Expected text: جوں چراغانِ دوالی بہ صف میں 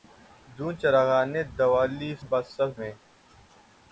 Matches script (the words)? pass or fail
pass